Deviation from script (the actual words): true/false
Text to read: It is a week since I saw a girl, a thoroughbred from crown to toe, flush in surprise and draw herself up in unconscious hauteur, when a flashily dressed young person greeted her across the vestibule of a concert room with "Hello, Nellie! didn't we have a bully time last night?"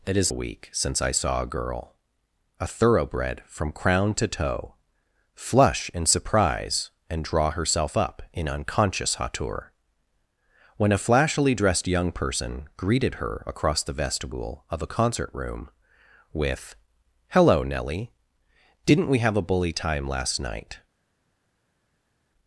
false